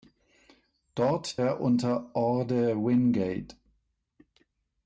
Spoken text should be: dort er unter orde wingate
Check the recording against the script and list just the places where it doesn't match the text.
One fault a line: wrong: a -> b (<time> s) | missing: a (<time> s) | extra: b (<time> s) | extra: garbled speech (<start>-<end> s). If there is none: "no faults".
no faults